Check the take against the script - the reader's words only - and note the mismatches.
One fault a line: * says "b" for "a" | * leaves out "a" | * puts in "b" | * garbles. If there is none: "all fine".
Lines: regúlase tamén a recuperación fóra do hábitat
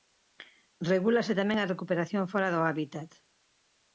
all fine